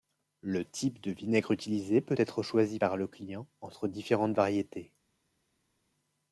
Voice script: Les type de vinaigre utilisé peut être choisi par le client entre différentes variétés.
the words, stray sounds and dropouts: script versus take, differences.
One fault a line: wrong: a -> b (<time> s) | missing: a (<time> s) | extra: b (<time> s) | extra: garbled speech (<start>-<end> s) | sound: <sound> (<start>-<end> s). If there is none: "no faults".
wrong: Les -> Le (0.4 s)